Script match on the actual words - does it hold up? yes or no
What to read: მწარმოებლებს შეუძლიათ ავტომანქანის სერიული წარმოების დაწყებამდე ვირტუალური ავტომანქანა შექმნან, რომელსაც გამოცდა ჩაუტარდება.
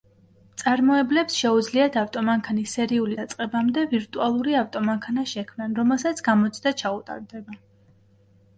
no